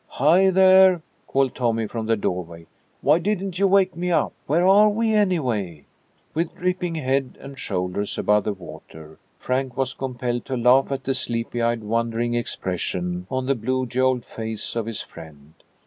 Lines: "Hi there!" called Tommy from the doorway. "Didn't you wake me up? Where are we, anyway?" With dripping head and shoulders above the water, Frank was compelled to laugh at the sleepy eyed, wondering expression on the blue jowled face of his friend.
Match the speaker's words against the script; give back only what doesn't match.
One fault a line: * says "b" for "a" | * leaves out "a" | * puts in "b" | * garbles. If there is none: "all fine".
* puts in "Why"